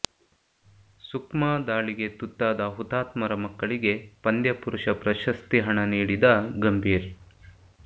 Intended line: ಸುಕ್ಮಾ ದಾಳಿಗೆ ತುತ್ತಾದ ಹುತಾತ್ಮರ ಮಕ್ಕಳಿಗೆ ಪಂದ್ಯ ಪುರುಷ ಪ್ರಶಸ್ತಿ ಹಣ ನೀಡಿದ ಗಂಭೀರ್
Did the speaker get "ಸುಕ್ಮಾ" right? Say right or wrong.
right